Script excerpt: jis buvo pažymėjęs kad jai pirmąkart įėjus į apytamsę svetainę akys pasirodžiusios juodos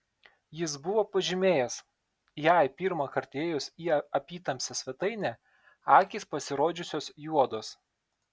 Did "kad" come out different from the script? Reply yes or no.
yes